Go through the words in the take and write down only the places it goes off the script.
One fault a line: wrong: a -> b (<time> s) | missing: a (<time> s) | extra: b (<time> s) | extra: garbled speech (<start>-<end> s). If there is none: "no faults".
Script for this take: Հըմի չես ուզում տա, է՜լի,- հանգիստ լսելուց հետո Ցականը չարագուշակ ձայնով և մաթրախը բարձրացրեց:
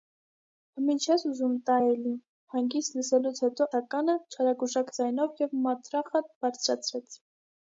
no faults